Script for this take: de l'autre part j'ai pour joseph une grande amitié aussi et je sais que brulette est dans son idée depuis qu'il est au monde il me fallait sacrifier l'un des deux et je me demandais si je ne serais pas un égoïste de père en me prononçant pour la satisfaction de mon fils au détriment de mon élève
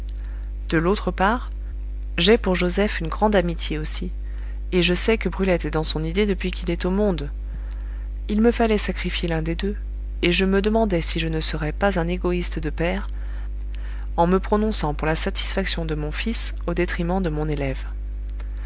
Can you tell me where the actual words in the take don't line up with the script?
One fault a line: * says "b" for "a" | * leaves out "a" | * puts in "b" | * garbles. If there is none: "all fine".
all fine